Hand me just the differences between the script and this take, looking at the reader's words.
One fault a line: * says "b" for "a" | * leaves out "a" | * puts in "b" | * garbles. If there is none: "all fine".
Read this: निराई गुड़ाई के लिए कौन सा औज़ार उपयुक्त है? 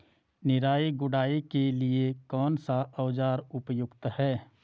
all fine